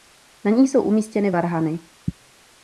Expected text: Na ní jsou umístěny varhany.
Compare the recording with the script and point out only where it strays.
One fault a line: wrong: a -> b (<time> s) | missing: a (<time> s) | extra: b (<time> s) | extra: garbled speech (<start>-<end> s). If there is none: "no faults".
no faults